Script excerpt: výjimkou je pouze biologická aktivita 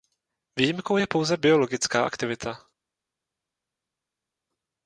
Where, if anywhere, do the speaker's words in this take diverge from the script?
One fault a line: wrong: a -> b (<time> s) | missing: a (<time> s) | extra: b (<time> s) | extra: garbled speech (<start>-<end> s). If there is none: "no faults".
no faults